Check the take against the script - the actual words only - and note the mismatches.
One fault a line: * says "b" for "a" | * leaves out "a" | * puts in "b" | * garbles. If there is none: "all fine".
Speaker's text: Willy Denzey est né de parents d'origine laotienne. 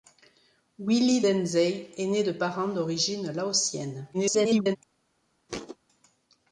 * garbles